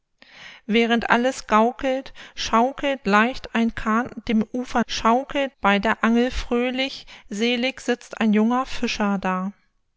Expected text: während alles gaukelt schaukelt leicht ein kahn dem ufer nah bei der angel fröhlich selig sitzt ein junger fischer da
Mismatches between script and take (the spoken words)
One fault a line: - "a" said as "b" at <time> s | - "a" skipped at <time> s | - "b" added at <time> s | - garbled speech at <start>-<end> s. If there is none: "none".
- "nah" said as "schaukelt" at 4.8 s